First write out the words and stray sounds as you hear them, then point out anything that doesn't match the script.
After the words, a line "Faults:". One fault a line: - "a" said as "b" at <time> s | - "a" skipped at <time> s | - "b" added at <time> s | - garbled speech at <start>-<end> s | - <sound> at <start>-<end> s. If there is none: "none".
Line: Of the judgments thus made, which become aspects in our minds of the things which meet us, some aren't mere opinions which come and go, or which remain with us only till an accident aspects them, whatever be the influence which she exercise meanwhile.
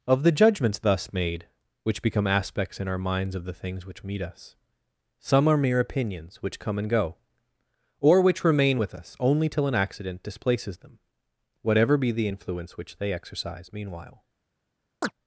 Of the judgments thus made, which become aspects in our minds of the things which meet us, some are mere opinions which come and go, or which remain with us only till an accident displaces them, whatever be the influence which they exercise meanwhile.
Faults:
- "aren't" said as "are" at 5.5 s
- "aspects" said as "displaces" at 10.2 s
- "she" said as "they" at 13.0 s
- chirp at 15.0-15.1 s